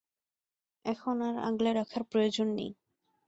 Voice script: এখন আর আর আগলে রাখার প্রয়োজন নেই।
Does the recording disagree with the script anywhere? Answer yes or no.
yes